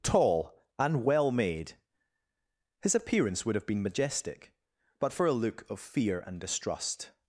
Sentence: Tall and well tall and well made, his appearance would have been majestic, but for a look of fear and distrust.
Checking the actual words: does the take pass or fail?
fail